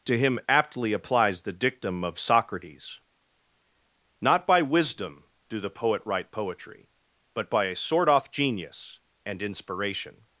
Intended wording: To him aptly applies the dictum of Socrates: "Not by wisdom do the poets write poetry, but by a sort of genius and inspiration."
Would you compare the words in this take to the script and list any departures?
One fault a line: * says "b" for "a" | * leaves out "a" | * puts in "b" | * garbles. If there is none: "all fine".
* says "poet" for "poets"
* says "off" for "of"